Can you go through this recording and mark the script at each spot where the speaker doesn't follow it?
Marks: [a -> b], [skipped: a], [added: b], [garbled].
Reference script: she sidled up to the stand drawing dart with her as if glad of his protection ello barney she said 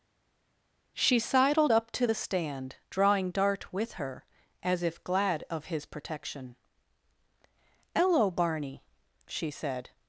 she sidled up to the stand drawing dart with her as if glad of his protection ello barney she said